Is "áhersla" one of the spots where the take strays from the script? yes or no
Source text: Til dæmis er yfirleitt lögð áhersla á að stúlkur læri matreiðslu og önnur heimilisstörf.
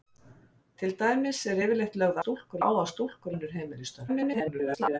yes